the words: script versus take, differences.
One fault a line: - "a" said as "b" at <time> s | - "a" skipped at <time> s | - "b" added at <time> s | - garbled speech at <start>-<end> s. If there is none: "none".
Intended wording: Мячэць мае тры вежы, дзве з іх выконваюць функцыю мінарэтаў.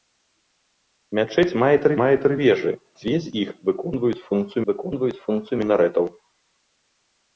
- "мае тры" added at 2.0 s
- "выконваюць функцыю" added at 4.7 s